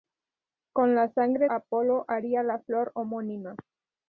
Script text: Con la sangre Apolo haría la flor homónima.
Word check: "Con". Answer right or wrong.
right